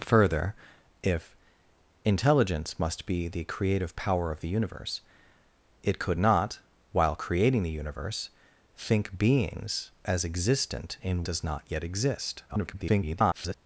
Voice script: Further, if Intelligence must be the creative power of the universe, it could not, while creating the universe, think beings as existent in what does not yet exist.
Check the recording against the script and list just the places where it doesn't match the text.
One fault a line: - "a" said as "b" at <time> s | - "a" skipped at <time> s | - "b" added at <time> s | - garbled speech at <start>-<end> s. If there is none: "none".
- "what" skipped at 11.3 s
- garbled speech at 12.5-13.5 s